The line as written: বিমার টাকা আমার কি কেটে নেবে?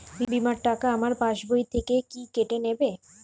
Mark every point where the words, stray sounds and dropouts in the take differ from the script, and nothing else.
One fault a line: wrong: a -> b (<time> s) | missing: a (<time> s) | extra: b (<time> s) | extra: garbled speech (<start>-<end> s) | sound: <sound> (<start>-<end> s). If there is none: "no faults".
extra: পাশ বই থেকে (1.2 s)